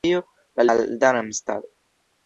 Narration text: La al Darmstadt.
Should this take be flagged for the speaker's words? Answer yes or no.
no